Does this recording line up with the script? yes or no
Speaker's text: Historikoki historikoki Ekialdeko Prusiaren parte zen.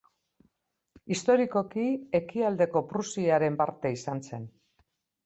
no